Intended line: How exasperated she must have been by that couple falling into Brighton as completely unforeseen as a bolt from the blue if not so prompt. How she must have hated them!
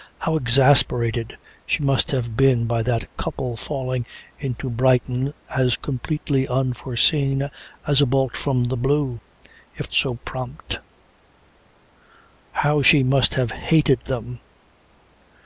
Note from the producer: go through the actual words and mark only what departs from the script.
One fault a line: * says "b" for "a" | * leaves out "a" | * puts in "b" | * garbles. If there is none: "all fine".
* leaves out "not"